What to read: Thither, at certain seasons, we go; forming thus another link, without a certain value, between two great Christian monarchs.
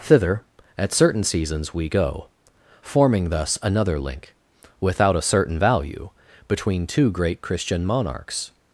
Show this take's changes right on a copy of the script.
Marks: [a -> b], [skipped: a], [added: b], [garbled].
Thither, at certain seasons, we go; forming thus another link, without a certain value, between two great Christian monarchs.